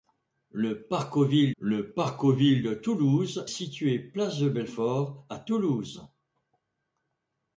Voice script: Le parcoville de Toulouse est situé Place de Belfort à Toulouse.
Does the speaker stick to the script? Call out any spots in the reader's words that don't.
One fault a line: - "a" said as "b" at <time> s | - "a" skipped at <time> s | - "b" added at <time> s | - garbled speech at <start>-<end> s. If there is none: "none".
- "le parcoville" added at 1.6 s
- "est" skipped at 3.5 s